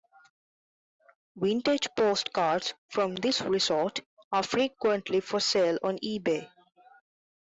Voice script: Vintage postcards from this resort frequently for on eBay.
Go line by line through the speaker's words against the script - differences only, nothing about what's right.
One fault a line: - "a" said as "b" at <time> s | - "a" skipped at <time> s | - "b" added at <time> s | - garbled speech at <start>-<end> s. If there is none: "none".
- "are" added at 4.3 s
- "sale" added at 5.4 s